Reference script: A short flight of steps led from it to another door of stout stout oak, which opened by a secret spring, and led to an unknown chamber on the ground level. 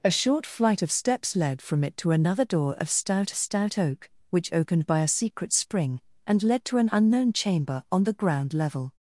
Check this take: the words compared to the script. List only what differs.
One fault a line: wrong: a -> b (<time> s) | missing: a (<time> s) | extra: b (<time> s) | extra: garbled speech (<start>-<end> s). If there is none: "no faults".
no faults